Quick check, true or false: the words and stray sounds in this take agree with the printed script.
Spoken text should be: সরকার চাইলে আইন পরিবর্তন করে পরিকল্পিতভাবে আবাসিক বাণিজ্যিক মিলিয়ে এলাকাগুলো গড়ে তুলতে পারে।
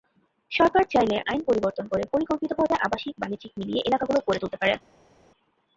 true